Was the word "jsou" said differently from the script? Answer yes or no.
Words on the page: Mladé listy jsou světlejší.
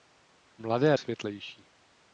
yes